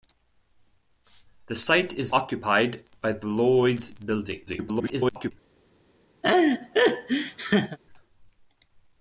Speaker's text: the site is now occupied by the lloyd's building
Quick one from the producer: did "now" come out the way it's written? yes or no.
no